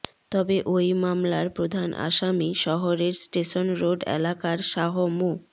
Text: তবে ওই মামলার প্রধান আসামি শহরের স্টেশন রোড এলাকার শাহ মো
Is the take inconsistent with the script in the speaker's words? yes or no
no